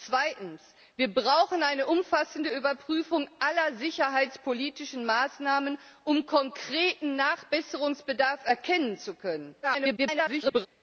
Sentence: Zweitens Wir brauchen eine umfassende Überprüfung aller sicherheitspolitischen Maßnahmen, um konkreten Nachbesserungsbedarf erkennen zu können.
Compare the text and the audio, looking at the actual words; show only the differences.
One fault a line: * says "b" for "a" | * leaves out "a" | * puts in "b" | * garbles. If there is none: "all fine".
* garbles